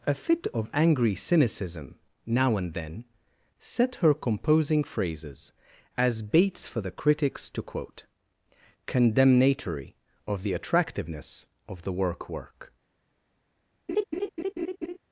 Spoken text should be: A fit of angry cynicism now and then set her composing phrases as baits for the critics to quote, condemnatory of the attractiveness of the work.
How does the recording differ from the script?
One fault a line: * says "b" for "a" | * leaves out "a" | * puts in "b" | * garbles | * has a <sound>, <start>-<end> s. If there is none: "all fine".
* puts in "work"
* has a laugh, 13.9-15.0 s